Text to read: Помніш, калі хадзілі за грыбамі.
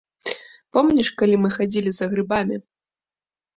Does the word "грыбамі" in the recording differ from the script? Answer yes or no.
no